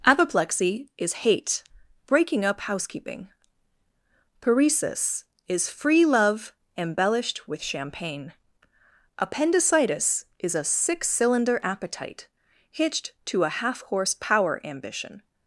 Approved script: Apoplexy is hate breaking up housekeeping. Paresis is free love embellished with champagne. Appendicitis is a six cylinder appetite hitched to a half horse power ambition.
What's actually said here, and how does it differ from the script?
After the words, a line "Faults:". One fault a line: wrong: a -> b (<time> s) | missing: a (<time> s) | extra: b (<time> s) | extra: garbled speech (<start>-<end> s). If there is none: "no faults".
Apoplexy is hate breaking up housekeeping. Paresis is free love embellished with champagne. Appendicitis is a six cylinder appetite hitched to a half horse power ambition.
Faults:
no faults